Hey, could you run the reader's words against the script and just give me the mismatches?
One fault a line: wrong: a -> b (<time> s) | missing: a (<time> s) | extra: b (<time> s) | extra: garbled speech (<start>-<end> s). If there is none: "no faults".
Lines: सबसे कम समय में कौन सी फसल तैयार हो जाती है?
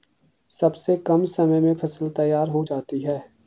missing: कौन सी (1.8 s)